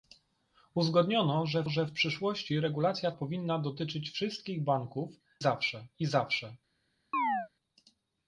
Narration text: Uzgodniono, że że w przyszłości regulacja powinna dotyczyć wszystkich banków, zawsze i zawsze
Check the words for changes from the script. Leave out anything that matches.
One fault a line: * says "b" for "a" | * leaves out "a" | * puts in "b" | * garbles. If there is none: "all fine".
all fine